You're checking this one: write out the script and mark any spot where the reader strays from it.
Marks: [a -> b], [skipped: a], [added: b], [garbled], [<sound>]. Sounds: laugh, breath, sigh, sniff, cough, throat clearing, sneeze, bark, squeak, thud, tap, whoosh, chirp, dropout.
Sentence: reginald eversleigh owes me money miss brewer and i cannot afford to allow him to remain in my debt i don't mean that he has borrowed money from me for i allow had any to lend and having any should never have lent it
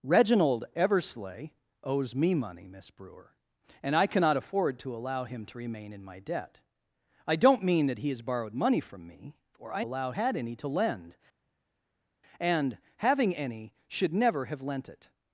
reginald eversleigh owes me money miss brewer and i cannot afford to allow him to remain in my debt i don't mean that he has borrowed money from me for i allow had any to lend and having any should never have lent it